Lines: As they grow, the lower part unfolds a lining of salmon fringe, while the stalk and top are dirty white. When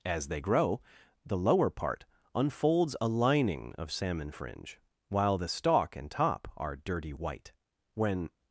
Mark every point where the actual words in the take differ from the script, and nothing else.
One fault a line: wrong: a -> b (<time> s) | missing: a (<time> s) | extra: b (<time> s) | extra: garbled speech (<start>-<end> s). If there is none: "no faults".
no faults